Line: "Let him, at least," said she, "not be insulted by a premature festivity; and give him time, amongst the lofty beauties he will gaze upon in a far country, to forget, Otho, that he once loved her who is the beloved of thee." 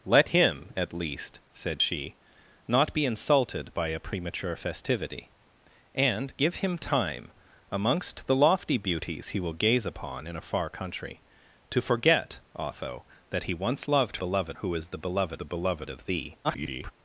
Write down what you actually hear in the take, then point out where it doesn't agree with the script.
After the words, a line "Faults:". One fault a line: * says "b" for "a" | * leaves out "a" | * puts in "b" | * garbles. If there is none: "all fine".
"Let him, at least," said she, "not be insulted by a premature festivity; and give him time, amongst the lofty beauties he will gaze upon in a far country, to forget, Otho, that he once loved beloved who is the beloved the beloved of thee." [garbled]
Faults:
* says "beloved" for "her"
* puts in "the beloved"
* garbles